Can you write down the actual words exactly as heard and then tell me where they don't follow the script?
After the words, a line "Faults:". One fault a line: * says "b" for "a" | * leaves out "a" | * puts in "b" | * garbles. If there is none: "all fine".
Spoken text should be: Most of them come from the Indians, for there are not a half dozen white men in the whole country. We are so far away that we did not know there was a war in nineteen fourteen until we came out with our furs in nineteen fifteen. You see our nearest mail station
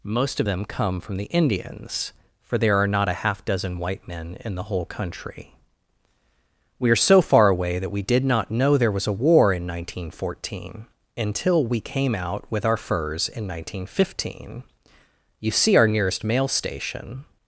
Most of them come from the Indians, for there are not a half dozen white men in the whole country. We are so far away that we did not know there was a war in nineteen fourteen until we came out with our furs in nineteen fifteen. You see our nearest mail station
Faults:
all fine